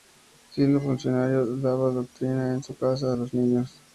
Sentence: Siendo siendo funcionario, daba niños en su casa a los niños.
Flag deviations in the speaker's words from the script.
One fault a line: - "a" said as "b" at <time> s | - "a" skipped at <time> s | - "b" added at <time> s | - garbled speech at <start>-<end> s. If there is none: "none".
- "siendo" skipped at 0.8 s
- "niños" said as "doctrina" at 1.9 s